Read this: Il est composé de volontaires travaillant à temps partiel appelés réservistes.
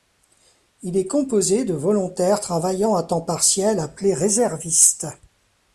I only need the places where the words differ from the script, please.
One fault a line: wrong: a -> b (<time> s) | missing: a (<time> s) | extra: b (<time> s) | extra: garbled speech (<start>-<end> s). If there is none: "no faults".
no faults